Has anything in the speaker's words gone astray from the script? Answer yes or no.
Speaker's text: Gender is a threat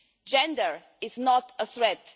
yes